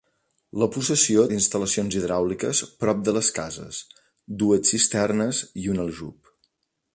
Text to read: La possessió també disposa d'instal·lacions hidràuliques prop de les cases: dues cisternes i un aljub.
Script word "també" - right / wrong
wrong